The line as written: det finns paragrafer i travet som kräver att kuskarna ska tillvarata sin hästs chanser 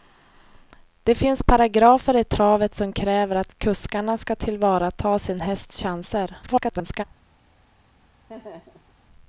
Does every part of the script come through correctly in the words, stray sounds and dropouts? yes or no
no